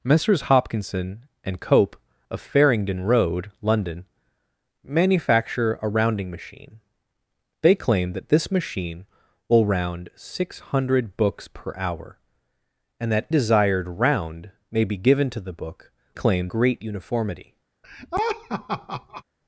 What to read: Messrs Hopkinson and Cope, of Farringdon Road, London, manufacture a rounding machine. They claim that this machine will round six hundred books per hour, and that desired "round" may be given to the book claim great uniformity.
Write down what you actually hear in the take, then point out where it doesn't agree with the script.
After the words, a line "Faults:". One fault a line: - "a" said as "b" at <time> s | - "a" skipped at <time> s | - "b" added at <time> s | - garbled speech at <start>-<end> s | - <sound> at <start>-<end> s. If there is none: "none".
Messrs Hopkinson and Cope, of Farringdon Road, London, manufacture a rounding machine. They claim that this machine will round six hundred books per hour, and that desired "round" may be given to the book claim great uniformity.
Faults:
- laugh at 17.8-19.2 s